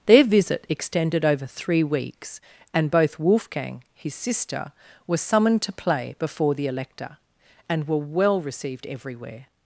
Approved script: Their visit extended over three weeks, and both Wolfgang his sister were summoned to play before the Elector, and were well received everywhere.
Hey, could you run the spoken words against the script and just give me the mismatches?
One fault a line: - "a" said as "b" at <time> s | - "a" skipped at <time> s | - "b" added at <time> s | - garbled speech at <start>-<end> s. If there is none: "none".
none